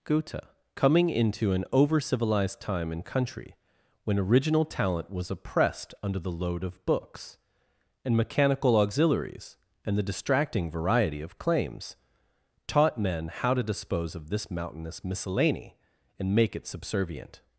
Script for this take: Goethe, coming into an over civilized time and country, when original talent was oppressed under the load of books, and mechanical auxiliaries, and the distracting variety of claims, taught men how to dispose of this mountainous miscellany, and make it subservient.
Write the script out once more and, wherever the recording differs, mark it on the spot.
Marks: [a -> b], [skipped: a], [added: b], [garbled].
Goethe, coming into an over civilized time and country, when original talent was oppressed under the load of books, and mechanical auxiliaries, and the distracting variety of claims, taught men how to dispose of this mountainous miscellany, and make it subservient.